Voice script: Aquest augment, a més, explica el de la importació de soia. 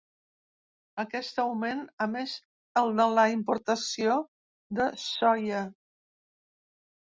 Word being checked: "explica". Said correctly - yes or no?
no